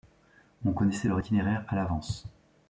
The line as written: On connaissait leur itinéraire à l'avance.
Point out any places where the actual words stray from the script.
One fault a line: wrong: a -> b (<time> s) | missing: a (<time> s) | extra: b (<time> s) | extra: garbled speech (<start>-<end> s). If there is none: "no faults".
no faults